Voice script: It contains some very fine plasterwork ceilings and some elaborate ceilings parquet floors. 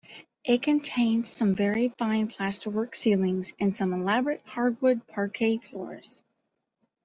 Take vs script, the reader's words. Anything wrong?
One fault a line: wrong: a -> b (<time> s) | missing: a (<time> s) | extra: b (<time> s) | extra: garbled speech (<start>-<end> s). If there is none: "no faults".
wrong: ceilings -> hardwood (4.5 s)